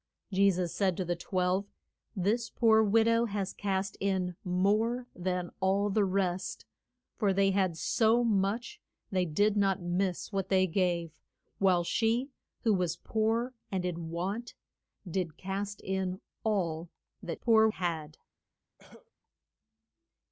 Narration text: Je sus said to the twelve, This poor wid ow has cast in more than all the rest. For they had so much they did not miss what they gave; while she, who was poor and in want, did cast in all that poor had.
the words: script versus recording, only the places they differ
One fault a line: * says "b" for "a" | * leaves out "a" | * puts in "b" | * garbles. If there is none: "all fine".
all fine